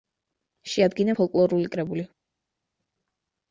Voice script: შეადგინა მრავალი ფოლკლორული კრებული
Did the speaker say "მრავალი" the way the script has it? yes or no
no